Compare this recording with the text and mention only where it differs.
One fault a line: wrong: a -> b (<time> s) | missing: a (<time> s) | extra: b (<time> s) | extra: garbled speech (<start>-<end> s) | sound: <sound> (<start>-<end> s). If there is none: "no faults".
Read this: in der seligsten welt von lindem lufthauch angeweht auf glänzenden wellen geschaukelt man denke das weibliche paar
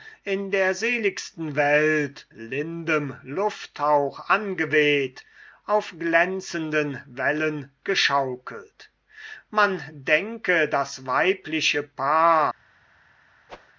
missing: von (2.3 s)
sound: whoosh (13.5-13.7 s)